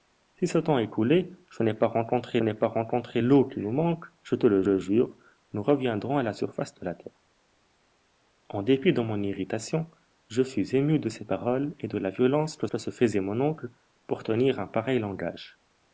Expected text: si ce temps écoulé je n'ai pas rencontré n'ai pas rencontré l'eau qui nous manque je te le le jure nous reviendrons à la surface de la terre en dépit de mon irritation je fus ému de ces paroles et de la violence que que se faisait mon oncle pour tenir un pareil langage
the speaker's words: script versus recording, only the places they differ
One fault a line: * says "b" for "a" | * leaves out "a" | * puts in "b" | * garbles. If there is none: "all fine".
all fine